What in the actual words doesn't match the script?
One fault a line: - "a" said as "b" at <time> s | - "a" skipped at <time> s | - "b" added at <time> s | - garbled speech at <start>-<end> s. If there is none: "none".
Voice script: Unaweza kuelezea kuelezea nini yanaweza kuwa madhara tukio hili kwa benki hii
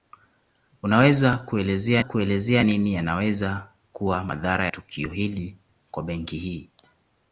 none